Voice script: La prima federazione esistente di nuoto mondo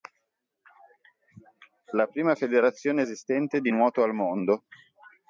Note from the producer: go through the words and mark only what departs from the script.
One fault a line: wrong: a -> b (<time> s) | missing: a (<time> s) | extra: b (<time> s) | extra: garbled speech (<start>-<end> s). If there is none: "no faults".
extra: al (4.0 s)